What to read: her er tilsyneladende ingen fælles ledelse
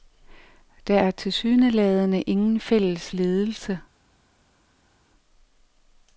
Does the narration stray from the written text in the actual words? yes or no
yes